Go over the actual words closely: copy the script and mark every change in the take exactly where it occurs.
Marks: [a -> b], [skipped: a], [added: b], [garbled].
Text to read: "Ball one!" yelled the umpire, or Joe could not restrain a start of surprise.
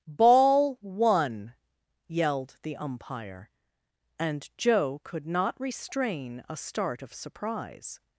"Ball one!" yelled the umpire, [or -> and] Joe could not restrain a start of surprise.